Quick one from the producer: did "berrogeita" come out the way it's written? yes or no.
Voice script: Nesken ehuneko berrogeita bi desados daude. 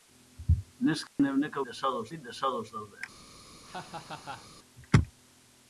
no